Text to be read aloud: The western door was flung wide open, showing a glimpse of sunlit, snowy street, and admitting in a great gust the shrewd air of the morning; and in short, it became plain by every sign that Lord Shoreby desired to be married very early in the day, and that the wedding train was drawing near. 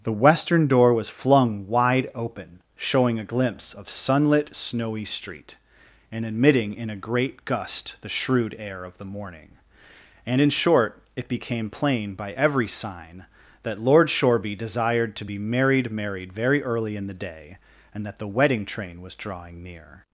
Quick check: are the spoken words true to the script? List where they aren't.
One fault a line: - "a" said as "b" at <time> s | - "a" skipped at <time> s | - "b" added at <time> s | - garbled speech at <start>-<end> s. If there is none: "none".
- "married" added at 15.9 s